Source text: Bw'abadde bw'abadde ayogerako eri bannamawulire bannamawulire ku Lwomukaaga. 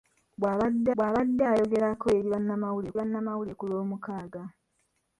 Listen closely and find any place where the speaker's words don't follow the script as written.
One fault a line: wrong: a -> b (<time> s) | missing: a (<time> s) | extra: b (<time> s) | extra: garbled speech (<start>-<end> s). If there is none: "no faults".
no faults